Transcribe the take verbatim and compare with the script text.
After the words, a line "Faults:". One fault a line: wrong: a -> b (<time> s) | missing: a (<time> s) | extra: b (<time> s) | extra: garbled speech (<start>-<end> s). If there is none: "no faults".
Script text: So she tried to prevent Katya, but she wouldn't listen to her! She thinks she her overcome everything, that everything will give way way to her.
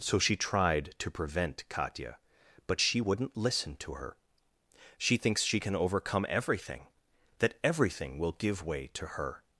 So she tried to prevent Katya, but she wouldn't listen to her! She thinks she can overcome everything, that everything will give way to her.
Faults:
wrong: her -> can (5.6 s)
missing: way (8.9 s)